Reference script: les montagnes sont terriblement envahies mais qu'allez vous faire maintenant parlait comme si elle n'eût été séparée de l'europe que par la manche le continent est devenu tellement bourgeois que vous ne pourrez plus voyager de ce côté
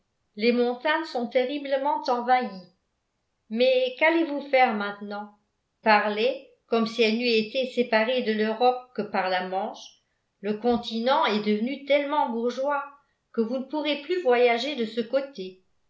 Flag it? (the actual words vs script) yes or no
no